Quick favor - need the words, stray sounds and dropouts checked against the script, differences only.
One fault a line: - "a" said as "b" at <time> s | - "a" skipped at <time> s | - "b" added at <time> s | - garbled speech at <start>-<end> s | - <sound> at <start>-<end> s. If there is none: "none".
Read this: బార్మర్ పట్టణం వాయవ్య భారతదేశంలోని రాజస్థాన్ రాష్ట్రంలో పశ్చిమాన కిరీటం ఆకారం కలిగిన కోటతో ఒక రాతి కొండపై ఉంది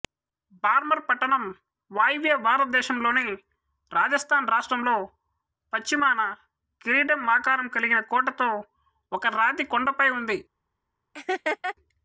- laugh at 11.1-11.8 s